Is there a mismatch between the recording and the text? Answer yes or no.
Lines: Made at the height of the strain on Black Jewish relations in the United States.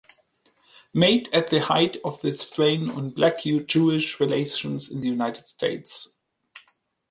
no